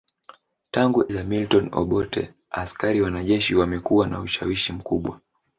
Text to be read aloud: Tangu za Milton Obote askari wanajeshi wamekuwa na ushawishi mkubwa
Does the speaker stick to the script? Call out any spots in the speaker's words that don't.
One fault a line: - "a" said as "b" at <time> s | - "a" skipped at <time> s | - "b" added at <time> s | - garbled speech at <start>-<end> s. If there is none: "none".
none